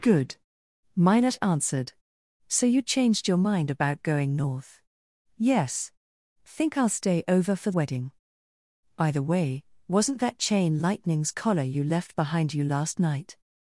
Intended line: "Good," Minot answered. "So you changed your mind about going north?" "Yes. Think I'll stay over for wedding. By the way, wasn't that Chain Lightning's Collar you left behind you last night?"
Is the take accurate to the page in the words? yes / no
yes